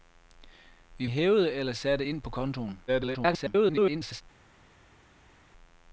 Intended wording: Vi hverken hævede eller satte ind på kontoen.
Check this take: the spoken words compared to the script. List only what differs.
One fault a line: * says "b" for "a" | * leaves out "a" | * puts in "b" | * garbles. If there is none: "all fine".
* leaves out "hverken"
* garbles